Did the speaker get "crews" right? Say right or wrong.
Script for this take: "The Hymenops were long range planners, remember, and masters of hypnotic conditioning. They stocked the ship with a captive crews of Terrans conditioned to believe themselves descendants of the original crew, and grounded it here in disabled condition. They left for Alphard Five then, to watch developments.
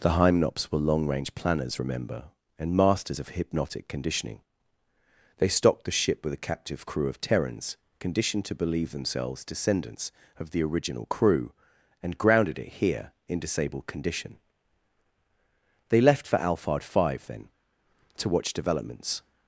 wrong